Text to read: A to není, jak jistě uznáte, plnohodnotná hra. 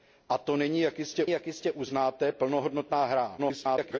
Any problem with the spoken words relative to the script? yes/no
yes